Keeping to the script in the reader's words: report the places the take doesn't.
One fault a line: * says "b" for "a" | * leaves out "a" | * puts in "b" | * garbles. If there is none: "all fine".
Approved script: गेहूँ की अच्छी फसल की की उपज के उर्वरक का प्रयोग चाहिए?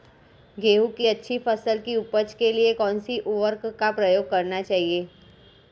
* leaves out "की"
* puts in "लिए कौनसी"
* puts in "करना"